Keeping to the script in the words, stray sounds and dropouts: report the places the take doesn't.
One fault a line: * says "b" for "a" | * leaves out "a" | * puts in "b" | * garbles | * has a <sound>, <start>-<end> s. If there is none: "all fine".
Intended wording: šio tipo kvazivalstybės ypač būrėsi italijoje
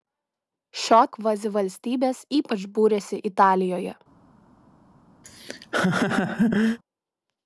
* leaves out "tipo"
* has a laugh, 5.2-6.8 s